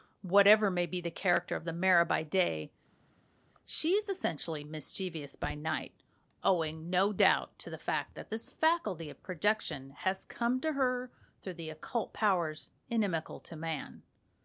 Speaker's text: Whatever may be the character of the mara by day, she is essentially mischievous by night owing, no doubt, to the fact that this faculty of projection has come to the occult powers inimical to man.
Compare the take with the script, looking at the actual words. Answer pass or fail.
fail